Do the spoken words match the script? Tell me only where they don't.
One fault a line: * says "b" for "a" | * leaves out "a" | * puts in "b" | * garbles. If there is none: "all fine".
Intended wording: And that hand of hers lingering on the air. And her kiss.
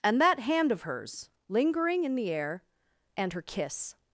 * says "in" for "on"